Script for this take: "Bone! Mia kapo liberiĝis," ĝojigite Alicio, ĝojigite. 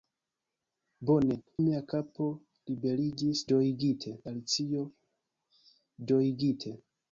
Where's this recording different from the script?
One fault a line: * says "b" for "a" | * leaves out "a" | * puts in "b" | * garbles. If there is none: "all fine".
all fine